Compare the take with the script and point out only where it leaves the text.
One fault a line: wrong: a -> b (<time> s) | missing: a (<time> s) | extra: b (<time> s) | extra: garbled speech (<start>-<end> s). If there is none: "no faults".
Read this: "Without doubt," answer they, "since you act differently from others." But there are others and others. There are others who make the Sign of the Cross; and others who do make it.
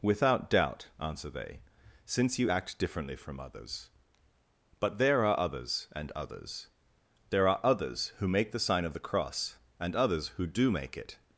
no faults